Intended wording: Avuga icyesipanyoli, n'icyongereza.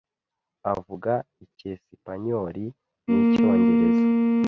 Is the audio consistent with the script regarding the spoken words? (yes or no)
yes